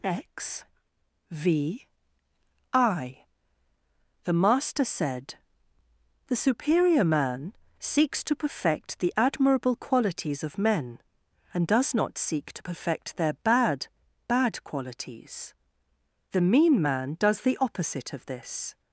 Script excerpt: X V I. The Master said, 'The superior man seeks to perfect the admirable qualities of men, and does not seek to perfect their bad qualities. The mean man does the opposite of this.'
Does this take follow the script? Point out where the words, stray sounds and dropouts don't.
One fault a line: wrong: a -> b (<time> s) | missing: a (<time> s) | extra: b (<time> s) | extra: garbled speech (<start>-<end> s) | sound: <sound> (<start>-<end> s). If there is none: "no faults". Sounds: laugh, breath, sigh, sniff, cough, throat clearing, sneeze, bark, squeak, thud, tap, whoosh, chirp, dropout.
extra: bad (14.3 s)